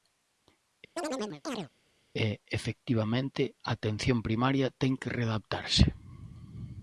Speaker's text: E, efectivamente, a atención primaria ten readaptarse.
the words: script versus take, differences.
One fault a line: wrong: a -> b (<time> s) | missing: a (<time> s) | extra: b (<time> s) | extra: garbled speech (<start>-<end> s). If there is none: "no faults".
extra: que (5.0 s)